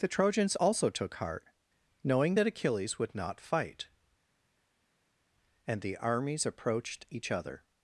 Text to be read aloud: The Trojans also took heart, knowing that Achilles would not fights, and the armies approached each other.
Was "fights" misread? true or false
true